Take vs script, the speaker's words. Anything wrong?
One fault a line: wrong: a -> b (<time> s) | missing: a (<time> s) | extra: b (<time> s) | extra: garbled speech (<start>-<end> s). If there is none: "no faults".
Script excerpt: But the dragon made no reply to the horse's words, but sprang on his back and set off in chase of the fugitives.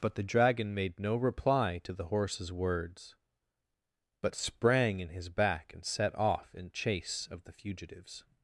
wrong: on -> in (5.0 s)